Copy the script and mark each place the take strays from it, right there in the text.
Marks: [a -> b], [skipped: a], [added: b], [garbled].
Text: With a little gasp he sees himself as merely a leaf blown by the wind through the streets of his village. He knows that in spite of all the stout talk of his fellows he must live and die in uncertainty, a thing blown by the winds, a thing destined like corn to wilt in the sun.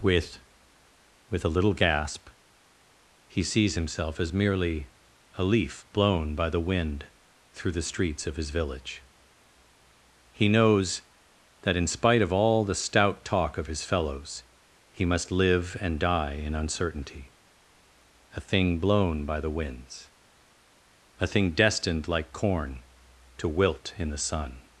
With [added: with] a little gasp he sees himself as merely a leaf blown by the wind through the streets of his village. He knows that in spite of all the stout talk of his fellows he must live and die in uncertainty, a thing blown by the winds, a thing destined like corn to wilt in the sun.